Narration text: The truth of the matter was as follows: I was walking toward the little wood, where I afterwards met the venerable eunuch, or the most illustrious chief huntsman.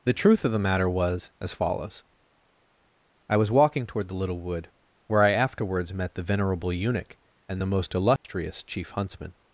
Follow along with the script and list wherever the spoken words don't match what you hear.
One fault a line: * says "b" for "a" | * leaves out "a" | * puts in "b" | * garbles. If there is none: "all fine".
* says "and" for "or"